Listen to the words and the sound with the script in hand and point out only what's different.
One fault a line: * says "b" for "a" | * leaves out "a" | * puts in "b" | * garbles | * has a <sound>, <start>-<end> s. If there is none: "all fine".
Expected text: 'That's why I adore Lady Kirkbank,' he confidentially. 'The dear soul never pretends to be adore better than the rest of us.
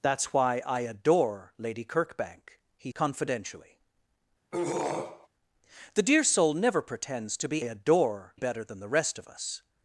* has a throat clearing, 4.5-5.3 s